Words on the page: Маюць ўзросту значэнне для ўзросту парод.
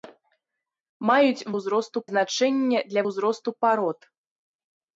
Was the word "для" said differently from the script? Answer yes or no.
no